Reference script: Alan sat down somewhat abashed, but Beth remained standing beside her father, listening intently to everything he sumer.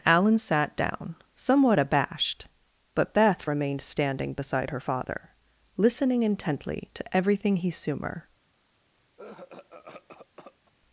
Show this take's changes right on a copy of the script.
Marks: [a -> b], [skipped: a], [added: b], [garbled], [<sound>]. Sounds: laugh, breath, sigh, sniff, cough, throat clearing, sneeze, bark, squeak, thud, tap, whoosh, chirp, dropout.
Alan sat down somewhat abashed, but Beth remained standing beside her father, listening intently to everything he sumer. [cough]